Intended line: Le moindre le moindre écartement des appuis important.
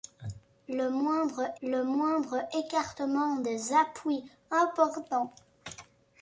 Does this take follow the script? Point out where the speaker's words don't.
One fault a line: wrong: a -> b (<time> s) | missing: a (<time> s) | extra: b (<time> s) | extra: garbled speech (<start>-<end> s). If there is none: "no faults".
no faults